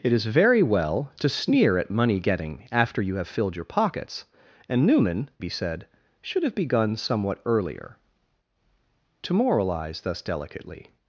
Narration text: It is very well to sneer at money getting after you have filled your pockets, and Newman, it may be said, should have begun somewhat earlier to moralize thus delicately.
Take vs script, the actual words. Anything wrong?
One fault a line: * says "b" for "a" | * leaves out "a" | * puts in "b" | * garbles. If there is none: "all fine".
* leaves out "it may"